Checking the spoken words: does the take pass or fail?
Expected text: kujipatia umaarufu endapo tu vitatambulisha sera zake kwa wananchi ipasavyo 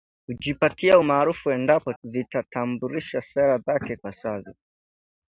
fail